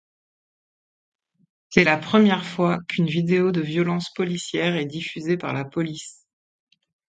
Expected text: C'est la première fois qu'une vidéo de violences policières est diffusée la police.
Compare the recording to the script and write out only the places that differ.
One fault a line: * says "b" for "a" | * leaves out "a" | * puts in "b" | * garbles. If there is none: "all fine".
* puts in "par"